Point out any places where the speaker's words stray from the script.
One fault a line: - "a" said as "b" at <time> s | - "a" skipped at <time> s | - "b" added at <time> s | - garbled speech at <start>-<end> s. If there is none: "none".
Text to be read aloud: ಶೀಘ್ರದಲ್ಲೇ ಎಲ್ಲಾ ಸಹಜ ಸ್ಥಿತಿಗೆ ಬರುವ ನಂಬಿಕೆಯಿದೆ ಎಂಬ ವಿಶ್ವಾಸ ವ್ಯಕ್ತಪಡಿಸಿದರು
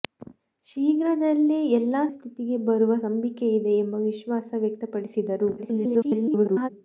- "ಸಹಜ" skipped at 2.0 s
- garbled speech at 5.6-6.7 s